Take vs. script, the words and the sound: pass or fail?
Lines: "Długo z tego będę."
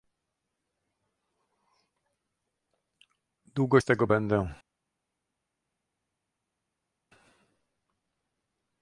pass